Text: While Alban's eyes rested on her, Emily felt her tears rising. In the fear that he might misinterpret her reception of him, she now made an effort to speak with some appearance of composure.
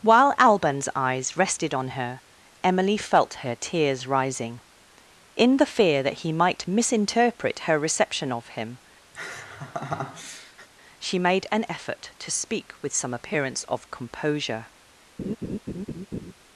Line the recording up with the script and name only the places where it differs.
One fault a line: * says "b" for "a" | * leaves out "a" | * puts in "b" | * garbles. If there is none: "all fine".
* leaves out "now"